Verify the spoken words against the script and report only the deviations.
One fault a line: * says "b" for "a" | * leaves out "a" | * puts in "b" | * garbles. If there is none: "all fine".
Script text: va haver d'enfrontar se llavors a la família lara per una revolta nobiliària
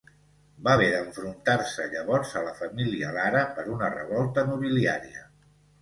all fine